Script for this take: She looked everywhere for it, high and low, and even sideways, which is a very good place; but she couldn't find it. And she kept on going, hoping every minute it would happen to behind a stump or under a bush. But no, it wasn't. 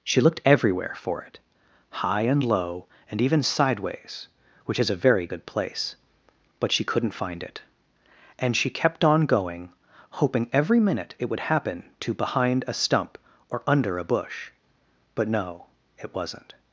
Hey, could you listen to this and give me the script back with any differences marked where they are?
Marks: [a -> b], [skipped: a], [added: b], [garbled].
She looked everywhere for it, high and low, and even sideways, which is a very good place; but she couldn't find it. And she kept on going, hoping every minute it would happen to behind a stump or under a bush. But no, it wasn't.